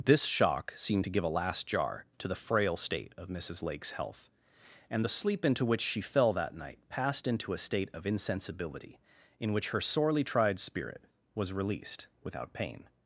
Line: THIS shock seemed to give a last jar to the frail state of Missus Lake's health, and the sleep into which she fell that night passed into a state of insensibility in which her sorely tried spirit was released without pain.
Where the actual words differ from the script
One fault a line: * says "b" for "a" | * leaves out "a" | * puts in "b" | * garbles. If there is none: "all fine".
all fine